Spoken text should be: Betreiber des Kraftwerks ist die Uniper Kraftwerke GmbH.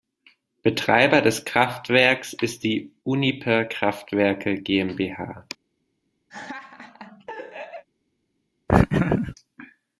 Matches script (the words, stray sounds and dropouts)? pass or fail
fail